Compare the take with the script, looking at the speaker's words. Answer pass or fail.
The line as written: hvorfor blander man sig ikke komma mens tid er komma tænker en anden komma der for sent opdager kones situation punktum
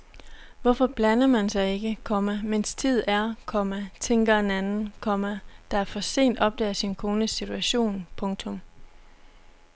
fail